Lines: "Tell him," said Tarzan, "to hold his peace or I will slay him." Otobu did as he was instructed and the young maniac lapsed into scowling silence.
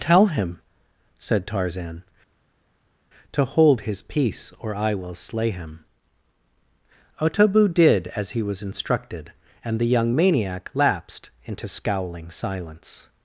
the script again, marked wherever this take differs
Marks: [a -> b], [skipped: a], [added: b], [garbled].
"Tell him," said Tarzan, "to hold his peace or I will slay him." Otobu did as he was instructed and the young maniac lapsed into scowling silence.